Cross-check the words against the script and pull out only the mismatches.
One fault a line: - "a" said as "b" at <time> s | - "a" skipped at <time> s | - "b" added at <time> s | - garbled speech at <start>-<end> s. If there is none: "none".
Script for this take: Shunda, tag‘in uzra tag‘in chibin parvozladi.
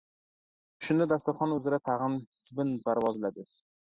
- "tag‘in" said as "dasturxon" at 1.1 s